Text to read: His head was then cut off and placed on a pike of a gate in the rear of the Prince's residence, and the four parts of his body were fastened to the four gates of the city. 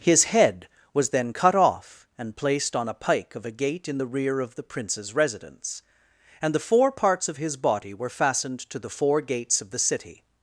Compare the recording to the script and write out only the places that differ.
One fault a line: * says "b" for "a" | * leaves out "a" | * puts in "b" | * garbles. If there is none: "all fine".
all fine